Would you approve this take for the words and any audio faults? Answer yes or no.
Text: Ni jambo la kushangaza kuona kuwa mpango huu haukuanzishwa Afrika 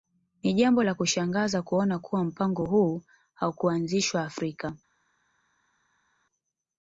yes